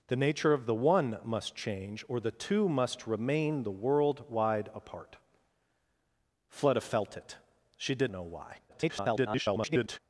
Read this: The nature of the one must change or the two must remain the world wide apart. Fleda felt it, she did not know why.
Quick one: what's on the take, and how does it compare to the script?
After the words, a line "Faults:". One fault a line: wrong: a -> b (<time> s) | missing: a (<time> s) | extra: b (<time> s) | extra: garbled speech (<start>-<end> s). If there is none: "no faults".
The nature of the one must change or the two must remain the world wide apart. Fleda felt it, she did know why. [garbled]
Faults:
missing: not (8.1 s)
extra: garbled speech (8.7-10.0 s)